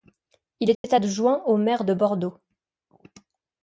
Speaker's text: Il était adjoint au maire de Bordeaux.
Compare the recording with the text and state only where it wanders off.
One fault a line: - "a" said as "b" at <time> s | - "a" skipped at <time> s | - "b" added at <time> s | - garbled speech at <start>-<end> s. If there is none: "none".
none